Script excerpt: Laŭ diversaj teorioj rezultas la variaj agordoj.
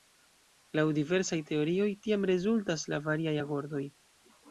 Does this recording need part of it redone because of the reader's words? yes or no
yes